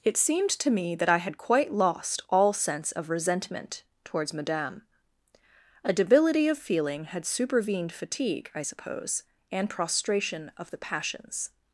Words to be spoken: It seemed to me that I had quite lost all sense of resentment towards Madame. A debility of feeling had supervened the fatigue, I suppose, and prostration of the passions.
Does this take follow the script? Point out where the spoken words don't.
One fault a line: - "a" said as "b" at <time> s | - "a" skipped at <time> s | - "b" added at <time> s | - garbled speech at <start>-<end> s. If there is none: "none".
- "the" skipped at 7.9 s